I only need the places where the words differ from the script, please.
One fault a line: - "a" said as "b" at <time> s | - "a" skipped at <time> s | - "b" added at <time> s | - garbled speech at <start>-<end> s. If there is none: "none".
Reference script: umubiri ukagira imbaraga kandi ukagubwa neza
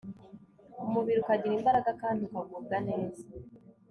none